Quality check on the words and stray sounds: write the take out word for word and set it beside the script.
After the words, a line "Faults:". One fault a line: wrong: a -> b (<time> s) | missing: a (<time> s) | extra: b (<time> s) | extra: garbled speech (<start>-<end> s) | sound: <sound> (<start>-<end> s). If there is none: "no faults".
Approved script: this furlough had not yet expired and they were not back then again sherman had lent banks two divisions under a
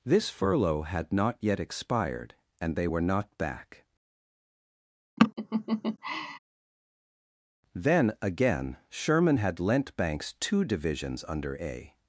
this furlough had not yet expired and they were not back then again sherman had lent banks two divisions under a
Faults:
sound: laugh (5.2-6.4 s)